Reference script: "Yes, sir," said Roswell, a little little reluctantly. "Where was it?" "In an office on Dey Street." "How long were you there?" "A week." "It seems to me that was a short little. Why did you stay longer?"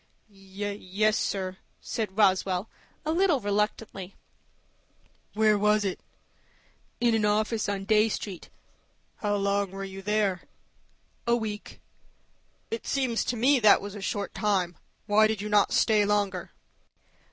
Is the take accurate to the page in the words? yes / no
no